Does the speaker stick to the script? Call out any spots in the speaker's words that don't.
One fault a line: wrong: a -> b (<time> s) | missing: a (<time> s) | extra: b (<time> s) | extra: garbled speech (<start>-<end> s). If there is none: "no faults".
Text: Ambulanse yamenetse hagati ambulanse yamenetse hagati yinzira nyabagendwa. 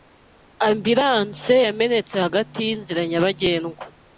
missing: ambulanse yamenetse hagati (2.6 s)